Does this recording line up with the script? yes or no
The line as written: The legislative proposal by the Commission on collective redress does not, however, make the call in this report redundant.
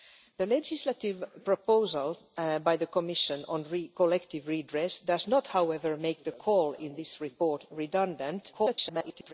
no